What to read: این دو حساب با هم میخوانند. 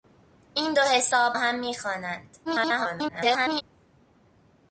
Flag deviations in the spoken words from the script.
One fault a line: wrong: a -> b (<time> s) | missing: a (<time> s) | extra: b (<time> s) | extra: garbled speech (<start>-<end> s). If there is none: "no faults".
missing: با (1.4 s)
extra: garbled speech (2.4-3.6 s)